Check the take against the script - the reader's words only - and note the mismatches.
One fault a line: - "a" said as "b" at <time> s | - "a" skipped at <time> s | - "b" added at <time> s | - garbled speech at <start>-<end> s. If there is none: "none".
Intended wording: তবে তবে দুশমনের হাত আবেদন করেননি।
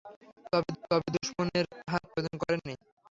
none